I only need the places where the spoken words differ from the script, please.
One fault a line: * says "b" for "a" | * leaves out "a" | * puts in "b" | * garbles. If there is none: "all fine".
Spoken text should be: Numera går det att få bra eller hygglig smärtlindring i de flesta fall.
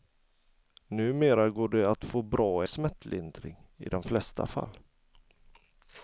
* leaves out "eller hygglig"